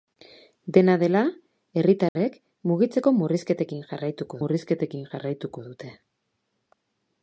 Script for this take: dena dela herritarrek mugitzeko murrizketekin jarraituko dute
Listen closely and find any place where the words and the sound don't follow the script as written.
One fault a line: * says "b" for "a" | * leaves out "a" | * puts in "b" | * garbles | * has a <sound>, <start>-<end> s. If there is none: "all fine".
* has a dropout, 2.1-2.2 s
* puts in "murrizketekin jarraituko"